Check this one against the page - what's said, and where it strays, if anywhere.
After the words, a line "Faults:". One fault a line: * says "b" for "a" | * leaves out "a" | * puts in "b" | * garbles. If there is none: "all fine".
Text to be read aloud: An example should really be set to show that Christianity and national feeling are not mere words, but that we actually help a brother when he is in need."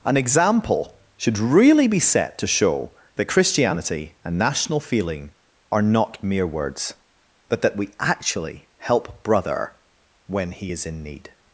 An example should really be set to show that Christianity and national feeling are not mere words, but that we actually help brother when he is in need."
Faults:
* leaves out "a"